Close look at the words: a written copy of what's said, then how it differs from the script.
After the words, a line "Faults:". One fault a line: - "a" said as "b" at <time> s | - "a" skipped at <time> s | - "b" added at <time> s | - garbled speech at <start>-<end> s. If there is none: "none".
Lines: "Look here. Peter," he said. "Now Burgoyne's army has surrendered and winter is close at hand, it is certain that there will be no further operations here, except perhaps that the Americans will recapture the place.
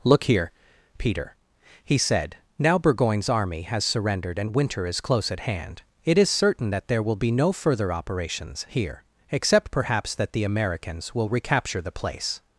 "Look here. Peter," he said. "Now Burgoyne's army has surrendered and winter is close at hand, it is certain that there will be no further operations here, except perhaps that the Americans will recapture the place.
Faults:
none